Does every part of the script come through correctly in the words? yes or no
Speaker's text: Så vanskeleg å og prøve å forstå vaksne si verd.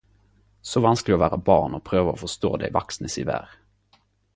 no